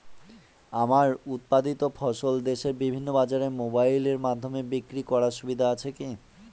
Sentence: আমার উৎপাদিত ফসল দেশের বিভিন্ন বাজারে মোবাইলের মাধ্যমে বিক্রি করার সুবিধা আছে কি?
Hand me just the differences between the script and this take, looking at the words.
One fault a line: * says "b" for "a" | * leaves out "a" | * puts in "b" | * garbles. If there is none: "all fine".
all fine